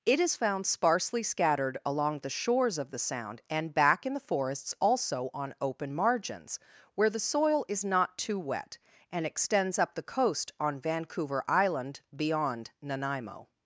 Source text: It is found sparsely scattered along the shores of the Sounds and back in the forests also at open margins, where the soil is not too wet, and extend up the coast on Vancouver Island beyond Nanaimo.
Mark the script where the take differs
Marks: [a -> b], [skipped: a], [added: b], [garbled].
It is found sparsely scattered along the shores of the [Sounds -> Sound] and back in the forests also [at -> on] open margins, where the soil is not too wet, and [extend -> extends] up the coast on Vancouver Island beyond Nanaimo.